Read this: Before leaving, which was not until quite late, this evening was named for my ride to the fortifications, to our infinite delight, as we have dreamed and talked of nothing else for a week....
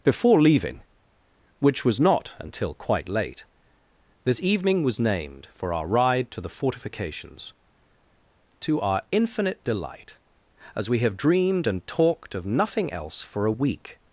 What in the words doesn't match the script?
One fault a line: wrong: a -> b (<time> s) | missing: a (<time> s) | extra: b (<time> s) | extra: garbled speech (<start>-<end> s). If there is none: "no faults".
wrong: my -> our (5.7 s)